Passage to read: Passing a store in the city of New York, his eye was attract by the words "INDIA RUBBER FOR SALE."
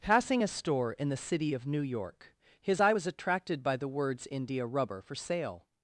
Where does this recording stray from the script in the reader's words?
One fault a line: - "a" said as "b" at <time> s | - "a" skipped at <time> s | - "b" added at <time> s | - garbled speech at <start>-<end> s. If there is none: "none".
- "attract" said as "attracted" at 3.1 s